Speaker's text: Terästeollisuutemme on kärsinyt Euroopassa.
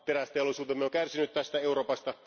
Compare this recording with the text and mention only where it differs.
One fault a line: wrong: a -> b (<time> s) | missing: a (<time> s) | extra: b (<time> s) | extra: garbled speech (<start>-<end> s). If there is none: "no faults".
extra: tästä (1.3 s)